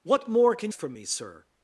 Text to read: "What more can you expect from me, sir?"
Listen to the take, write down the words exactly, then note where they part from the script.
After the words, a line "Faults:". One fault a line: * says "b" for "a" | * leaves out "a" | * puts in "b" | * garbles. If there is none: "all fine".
"What more can from me, sir?"
Faults:
* leaves out "you expect"